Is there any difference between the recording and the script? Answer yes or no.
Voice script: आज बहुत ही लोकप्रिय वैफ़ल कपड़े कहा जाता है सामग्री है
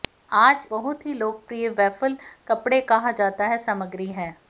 no